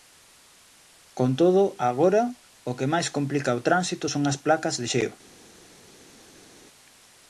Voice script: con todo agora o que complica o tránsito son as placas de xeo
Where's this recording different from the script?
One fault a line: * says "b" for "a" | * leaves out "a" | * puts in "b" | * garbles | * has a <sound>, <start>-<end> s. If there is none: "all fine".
* puts in "máis"